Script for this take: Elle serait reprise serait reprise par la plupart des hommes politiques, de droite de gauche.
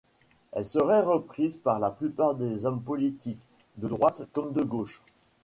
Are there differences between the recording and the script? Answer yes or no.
yes